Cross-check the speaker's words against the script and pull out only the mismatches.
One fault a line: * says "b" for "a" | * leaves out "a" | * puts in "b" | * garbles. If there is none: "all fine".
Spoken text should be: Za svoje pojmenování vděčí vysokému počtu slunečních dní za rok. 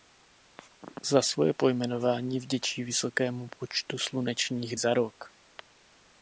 * leaves out "dní"